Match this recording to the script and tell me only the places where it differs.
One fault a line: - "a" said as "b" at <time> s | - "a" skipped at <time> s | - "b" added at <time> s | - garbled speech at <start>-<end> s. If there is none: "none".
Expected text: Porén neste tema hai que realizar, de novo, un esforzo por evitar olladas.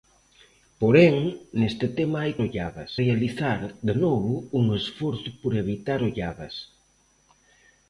- "que" said as "olladas" at 2.4 s